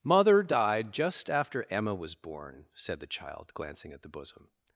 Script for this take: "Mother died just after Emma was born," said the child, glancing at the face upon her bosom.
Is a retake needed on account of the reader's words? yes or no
yes